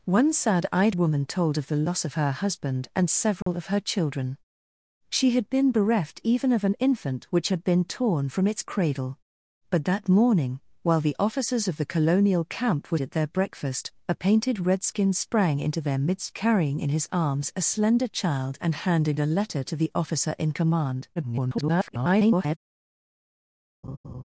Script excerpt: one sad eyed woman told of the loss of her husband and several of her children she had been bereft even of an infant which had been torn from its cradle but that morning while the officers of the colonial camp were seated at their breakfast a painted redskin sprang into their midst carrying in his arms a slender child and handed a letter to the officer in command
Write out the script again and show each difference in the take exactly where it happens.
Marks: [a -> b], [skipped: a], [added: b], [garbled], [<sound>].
one sad eyed woman told of the loss of her husband and several [dropout] of her children she had been bereft even of an infant which had been torn from its cradle but that morning while the officers of the colonial camp were [skipped: seated] at their breakfast a painted redskin sprang into their midst carrying in his arms a slender child and handed a letter to the officer in command [garbled] [laugh]